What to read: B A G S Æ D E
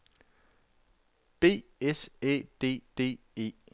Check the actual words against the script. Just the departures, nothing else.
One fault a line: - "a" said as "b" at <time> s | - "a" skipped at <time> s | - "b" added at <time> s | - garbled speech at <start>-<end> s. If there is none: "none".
- "A G" skipped at 1.6 s
- "D" added at 3.0 s